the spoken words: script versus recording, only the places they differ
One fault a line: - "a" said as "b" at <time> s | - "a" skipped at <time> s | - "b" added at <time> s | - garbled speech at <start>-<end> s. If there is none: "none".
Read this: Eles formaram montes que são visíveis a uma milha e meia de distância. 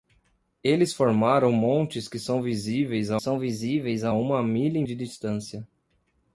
- "são visíveis a" added at 3.2 s
- "meia" skipped at 4.8 s